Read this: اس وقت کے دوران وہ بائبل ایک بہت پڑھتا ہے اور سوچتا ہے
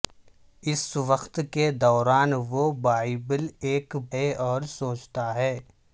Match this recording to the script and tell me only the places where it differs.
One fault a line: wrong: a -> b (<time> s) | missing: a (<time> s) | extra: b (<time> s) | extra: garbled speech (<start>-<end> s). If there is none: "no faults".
missing: بہت پڑھتا (4.0 s)